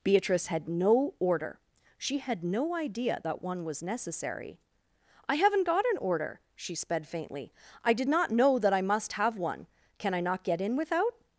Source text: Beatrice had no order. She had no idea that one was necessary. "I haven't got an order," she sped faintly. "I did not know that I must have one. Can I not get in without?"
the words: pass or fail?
pass